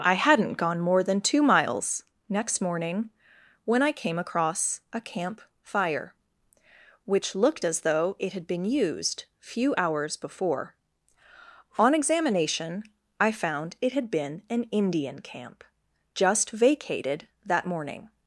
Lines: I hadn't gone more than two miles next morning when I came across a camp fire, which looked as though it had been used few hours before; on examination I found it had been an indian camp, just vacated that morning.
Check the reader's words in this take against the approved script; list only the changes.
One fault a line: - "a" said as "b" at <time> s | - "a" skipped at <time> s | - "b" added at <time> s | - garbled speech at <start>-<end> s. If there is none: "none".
none